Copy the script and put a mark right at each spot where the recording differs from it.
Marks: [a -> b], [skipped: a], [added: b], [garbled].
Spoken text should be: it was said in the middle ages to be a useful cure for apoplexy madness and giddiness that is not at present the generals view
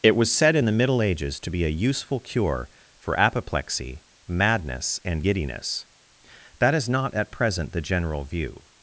it was said in the middle ages to be a useful cure for apoplexy madness and giddiness that is not at present the [generals -> general] view